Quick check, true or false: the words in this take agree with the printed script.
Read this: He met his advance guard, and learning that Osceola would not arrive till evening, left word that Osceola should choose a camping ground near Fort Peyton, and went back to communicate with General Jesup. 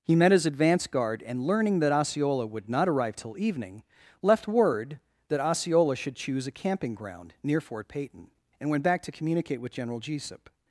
true